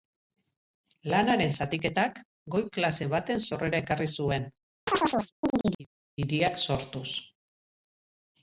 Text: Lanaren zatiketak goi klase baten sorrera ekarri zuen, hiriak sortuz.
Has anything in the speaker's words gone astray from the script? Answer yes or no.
no